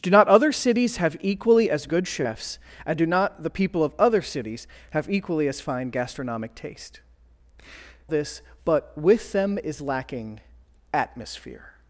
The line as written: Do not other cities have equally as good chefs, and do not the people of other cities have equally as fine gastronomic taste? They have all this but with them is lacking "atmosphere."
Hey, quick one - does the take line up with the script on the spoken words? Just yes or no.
no